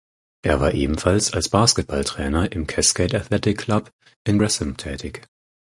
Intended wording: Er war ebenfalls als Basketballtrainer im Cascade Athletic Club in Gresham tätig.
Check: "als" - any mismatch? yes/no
no